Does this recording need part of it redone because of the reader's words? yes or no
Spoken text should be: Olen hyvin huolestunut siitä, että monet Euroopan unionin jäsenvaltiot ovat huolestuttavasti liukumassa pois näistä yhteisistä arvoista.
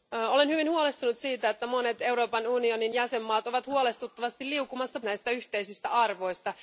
yes